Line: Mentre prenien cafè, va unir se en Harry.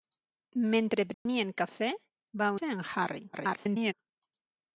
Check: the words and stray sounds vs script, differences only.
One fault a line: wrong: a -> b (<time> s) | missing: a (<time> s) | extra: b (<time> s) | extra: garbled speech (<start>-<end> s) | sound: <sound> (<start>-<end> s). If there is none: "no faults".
sound: dropout (1.1-1.3 s)
missing: unir (2.5 s)
extra: garbled speech (3.3-3.9 s)